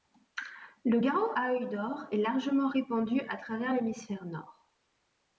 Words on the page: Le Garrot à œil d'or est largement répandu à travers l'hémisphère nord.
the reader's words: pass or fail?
pass